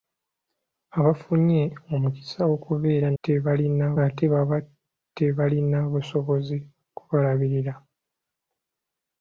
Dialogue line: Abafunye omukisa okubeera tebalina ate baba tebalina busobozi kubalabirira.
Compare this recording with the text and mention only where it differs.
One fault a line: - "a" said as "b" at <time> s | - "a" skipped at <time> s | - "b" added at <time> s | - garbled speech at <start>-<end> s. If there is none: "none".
none